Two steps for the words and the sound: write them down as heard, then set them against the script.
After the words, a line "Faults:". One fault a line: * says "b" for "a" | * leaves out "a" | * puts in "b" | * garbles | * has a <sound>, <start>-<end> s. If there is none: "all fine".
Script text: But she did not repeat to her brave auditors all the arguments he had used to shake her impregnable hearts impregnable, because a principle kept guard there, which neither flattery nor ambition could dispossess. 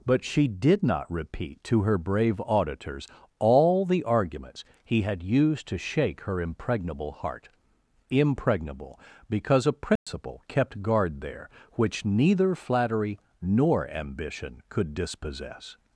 But she did not repeat to her brave auditors all the arguments he had used to shake her impregnable heart impregnable, because a principle kept guard there, which neither flattery nor ambition could dispossess.
Faults:
* says "heart" for "hearts"
* has a dropout, 10.0-10.1 s